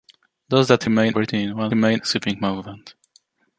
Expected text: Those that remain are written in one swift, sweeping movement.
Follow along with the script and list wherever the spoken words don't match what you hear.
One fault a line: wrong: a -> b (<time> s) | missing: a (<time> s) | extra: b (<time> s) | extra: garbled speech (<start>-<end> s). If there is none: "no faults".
missing: are (1.2 s)
wrong: swift -> remain (1.7 s)